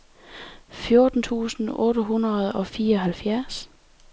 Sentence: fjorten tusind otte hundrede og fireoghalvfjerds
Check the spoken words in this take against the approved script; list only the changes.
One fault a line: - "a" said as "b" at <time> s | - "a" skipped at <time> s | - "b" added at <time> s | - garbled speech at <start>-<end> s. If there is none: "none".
none